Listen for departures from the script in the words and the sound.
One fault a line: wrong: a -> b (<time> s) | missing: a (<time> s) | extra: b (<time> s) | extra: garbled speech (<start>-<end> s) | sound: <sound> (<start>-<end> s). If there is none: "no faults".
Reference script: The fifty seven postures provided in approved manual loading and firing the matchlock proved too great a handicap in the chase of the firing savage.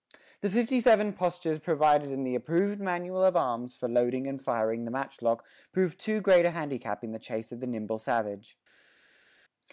extra: the (2.2 s)
extra: of arms for (3.2 s)
wrong: firing -> nimble (7.7 s)